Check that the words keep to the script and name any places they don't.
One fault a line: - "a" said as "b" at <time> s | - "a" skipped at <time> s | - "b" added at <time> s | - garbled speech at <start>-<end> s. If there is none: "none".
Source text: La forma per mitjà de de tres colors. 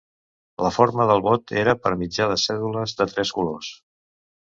- "del vot era" added at 1.1 s
- "cèdules" added at 2.4 s